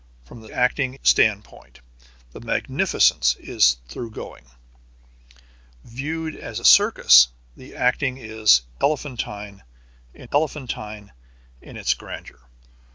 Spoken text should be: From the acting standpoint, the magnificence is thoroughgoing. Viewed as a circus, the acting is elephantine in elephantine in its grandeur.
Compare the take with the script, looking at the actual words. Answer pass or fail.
pass